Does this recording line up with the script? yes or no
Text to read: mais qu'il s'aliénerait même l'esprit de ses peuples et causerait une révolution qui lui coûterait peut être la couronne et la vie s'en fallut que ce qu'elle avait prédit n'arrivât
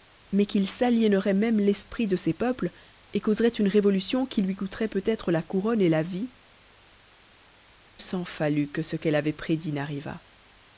yes